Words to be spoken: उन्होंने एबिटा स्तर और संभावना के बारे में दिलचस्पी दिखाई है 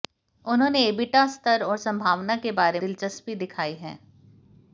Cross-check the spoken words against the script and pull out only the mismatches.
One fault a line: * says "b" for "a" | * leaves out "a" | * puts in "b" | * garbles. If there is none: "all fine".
* leaves out "में"